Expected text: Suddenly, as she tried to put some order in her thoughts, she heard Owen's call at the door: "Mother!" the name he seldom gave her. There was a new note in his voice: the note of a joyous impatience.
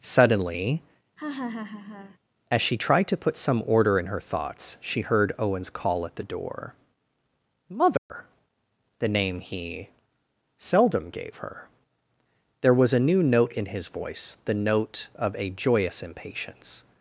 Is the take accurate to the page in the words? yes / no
yes